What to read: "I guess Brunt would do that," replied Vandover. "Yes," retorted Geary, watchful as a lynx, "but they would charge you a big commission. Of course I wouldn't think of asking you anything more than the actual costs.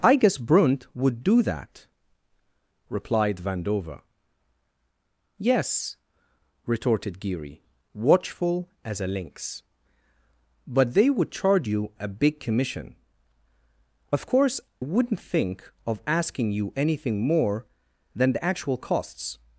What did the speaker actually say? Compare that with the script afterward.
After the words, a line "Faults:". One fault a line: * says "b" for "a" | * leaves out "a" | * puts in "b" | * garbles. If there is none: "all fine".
"I guess Brunt would do that," replied Vandover. "Yes," retorted Geary, watchful as a lynx, "but they would charge you a big commission. Of course wouldn't think of asking you anything more than the actual costs.
Faults:
* leaves out "I"